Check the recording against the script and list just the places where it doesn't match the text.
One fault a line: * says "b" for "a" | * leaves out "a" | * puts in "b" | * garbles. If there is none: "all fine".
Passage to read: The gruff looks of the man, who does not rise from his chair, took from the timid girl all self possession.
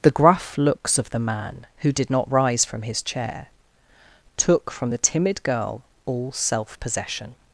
* says "did" for "does"